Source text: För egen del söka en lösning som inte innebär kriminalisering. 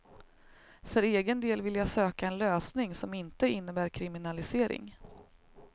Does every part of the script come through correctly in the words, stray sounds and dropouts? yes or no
no